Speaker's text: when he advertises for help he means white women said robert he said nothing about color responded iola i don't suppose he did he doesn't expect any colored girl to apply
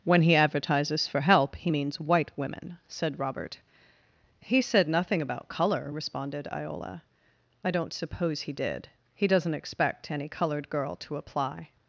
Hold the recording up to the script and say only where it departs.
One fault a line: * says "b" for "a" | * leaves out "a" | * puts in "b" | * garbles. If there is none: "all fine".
all fine